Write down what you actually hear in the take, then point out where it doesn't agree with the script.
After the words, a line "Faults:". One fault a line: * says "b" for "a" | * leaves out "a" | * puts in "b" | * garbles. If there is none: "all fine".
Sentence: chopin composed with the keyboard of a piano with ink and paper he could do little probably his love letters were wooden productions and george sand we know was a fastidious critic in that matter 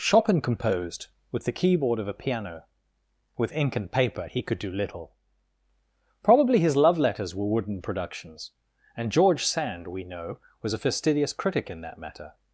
chopin composed with the keyboard of a piano with ink and paper he could do little probably his love letters were wooden productions and george sand we know was a fastidious critic in that matter
Faults:
all fine